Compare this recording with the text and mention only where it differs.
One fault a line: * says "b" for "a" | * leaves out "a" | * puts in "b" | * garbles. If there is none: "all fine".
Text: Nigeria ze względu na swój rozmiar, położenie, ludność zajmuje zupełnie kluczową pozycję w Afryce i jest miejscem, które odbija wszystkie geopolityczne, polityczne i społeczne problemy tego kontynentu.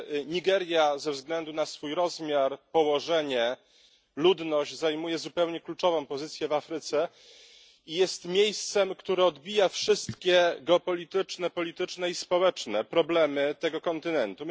all fine